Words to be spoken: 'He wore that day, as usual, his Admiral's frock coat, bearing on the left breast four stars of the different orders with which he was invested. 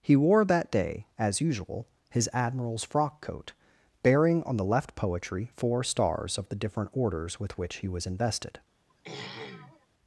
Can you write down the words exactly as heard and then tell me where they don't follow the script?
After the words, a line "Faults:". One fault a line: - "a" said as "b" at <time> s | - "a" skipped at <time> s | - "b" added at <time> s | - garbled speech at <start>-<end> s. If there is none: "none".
'He wore that day, as usual, his Admiral's frock coat, bearing on the left poetry four stars of the different orders with which he was invested.
Faults:
- "breast" said as "poetry" at 5.0 s